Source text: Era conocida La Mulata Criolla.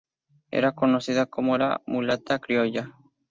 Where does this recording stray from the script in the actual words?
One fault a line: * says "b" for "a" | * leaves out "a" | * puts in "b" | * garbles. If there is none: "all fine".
* puts in "como"